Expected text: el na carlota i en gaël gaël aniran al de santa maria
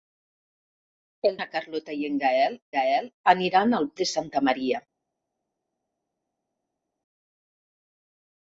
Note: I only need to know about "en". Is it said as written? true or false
true